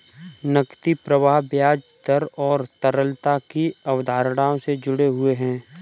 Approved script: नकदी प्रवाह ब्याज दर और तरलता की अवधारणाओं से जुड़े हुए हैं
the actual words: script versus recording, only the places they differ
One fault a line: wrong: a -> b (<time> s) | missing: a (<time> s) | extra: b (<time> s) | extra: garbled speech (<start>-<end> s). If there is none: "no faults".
no faults